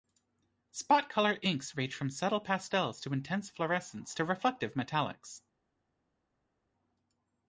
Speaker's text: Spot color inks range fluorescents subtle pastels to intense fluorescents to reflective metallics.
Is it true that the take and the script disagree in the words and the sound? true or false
true